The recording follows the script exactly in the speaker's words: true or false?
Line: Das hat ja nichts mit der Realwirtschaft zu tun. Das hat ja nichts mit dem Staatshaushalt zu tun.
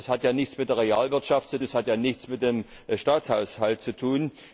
false